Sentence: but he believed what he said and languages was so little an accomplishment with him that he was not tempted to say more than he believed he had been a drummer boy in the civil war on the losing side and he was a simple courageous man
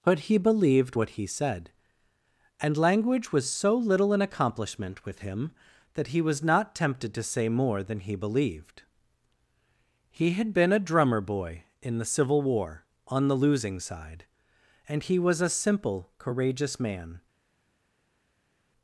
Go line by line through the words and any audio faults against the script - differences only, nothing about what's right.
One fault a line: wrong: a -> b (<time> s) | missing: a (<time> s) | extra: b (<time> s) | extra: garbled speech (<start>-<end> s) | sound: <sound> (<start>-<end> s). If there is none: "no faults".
wrong: languages -> language (2.8 s)